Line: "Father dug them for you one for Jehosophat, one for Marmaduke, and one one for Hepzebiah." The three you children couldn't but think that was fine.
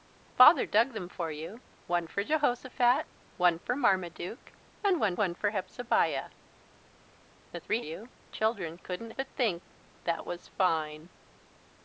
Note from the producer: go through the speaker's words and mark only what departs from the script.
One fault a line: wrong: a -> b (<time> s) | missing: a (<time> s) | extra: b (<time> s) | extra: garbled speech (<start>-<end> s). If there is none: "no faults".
no faults